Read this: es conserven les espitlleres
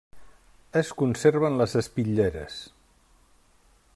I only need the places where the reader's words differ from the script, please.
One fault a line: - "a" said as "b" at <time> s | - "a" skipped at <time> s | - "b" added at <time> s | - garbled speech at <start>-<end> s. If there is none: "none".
none